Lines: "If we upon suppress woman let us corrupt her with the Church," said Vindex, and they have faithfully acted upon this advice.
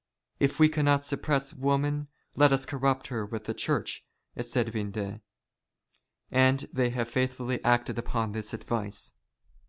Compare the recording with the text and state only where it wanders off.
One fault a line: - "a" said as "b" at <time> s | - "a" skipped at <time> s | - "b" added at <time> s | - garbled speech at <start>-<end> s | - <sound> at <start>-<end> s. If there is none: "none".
- "upon" said as "cannot" at 0.7 s